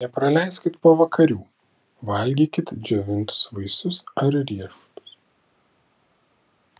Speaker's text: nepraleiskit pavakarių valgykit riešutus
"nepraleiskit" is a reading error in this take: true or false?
false